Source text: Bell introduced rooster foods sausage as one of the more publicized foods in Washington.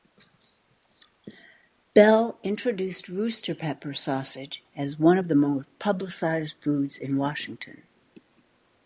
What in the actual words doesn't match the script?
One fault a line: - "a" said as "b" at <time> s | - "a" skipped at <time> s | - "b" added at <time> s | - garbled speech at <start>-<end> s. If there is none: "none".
- "foods" said as "pepper" at 3.5 s